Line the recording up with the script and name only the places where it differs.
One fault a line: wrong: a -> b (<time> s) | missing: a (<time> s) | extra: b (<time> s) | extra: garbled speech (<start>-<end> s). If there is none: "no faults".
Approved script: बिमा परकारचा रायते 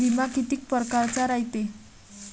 extra: कितीक (0.3 s)